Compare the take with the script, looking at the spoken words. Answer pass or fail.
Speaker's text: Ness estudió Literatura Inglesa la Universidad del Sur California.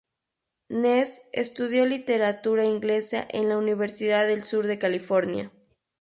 fail